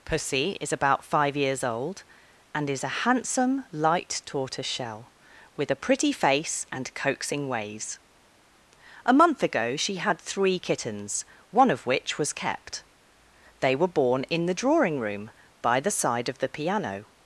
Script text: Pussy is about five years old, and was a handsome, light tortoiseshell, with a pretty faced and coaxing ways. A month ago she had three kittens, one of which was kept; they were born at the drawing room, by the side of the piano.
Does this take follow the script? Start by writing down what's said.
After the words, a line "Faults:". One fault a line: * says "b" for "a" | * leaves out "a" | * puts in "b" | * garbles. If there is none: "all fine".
Pussy is about five years old, and is a handsome, light tortoiseshell, with a pretty face and coaxing ways. A month ago she had three kittens, one of which was kept; they were born in the drawing room, by the side of the piano.
Faults:
* says "is" for "was"
* says "face" for "faced"
* says "in" for "at"